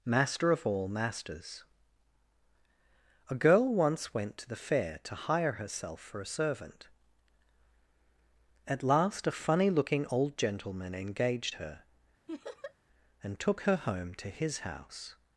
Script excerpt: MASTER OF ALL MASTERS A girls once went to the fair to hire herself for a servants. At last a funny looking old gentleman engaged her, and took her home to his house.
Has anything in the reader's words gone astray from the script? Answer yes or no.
yes